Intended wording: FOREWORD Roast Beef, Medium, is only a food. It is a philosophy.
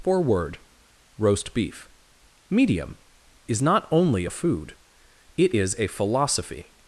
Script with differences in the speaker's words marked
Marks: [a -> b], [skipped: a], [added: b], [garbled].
FOREWORD Roast Beef, Medium, is [added: not] only a food. It is a philosophy.